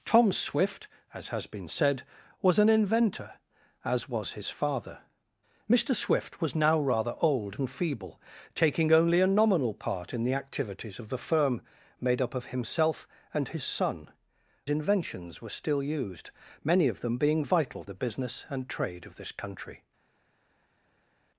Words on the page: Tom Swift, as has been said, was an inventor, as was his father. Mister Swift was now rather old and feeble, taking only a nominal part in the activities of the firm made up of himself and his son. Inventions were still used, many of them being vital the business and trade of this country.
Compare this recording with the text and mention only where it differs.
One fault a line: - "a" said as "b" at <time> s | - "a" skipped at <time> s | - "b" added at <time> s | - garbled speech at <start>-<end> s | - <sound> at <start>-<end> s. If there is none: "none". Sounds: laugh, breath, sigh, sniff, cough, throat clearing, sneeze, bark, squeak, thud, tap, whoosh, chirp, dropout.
none